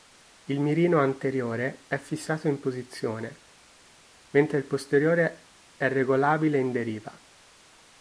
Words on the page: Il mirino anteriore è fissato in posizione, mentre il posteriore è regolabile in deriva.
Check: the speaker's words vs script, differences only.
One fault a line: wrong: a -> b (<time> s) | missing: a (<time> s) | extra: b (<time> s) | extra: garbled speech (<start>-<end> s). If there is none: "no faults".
no faults